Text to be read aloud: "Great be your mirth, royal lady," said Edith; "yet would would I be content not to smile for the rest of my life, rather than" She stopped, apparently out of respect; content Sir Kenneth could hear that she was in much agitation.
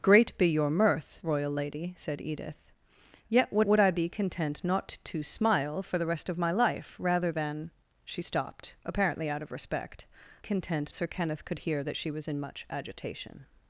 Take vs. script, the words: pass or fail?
pass